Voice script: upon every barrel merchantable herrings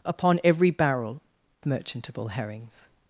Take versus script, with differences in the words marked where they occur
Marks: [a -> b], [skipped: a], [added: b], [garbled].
upon every barrel merchantable herrings